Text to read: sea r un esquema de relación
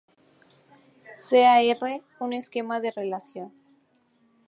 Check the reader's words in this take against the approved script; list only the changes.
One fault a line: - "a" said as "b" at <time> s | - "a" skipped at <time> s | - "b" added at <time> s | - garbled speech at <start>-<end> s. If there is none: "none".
none